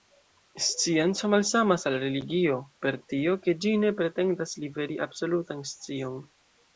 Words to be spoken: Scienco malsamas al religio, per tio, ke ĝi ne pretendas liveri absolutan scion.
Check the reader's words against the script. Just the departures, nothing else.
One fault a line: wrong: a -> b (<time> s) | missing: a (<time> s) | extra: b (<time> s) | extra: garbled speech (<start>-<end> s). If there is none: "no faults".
no faults